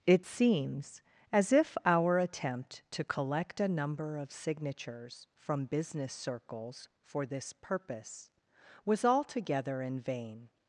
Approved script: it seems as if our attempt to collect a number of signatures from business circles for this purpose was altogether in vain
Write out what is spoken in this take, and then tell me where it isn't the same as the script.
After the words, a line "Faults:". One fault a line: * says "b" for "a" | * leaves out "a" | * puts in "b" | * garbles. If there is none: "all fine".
it seems as if our attempt to collect a number of signatures from business circles for this purpose was altogether in vain
Faults:
all fine